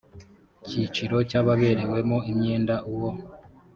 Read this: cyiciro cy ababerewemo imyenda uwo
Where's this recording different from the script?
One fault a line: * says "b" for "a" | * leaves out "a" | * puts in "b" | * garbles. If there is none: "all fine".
all fine